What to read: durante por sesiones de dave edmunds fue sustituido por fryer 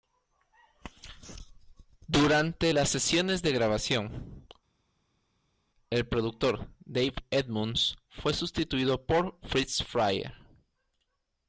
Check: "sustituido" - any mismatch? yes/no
no